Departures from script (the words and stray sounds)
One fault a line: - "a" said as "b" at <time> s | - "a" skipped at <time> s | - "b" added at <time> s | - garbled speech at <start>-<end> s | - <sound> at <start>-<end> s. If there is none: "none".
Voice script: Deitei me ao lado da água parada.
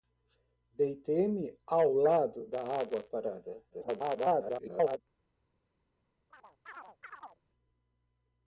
- garbled speech at 3.7-5.0 s
- chirp at 6.3-7.4 s